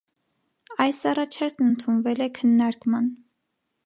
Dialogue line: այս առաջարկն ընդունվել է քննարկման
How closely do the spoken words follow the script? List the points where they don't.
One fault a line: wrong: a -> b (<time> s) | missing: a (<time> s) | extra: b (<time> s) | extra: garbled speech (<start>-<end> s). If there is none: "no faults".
no faults